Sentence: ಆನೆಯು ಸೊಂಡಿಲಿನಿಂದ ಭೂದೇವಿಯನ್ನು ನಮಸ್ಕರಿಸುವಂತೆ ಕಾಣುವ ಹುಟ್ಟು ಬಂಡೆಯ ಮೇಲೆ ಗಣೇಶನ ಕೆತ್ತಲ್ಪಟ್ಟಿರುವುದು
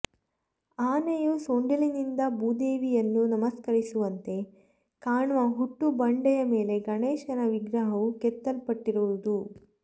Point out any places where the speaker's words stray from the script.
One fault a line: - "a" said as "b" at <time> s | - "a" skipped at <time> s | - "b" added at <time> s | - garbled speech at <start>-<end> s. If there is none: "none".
- "ವಿಗ್ರಹವು" added at 7.5 s